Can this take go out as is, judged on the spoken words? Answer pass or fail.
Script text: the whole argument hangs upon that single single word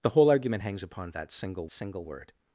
pass